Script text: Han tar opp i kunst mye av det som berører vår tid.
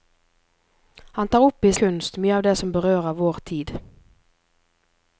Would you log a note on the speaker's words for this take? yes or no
no